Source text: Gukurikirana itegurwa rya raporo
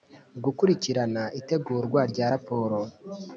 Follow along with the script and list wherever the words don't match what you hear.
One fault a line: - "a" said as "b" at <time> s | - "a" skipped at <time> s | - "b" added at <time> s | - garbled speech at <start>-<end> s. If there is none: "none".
none